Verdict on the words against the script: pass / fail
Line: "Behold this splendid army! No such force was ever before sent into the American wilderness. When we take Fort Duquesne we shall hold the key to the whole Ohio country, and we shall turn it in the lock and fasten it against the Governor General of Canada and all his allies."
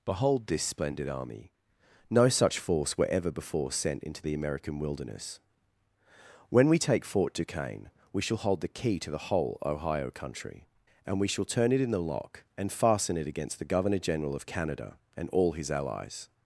fail